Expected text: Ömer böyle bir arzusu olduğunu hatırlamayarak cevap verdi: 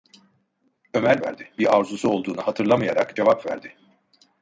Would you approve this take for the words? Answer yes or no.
no